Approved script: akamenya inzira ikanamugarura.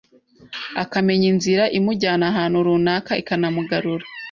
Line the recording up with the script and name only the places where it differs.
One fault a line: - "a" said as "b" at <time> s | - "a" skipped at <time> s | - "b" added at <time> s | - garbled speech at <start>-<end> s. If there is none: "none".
- "imujyana ahantu runaka" added at 1.8 s